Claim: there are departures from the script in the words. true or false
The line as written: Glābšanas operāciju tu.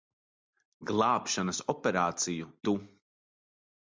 false